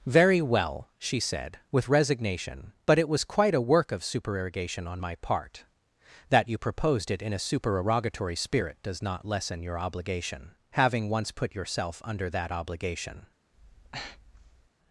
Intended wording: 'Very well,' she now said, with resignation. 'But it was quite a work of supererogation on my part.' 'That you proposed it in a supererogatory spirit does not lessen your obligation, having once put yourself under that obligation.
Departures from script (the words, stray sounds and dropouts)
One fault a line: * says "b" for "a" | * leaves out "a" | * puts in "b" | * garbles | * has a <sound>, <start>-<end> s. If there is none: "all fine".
* leaves out "now"
* has a breath, 13.5-14.7 s